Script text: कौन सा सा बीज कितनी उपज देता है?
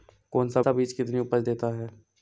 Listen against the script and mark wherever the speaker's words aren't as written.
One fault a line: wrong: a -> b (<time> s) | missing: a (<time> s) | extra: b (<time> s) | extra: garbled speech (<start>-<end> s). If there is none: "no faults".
no faults